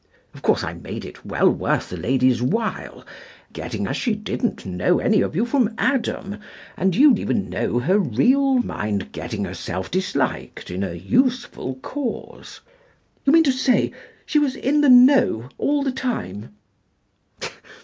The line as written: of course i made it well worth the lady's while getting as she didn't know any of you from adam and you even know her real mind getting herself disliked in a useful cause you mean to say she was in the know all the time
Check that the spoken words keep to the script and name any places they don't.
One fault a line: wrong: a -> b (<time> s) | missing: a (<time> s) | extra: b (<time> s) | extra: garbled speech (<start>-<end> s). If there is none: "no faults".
no faults